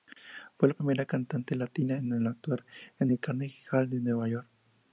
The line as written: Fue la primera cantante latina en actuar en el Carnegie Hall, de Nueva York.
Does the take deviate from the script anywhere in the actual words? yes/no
no